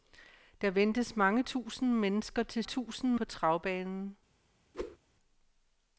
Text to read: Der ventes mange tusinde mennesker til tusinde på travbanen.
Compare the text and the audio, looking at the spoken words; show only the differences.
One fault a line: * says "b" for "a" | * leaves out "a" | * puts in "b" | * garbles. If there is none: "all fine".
all fine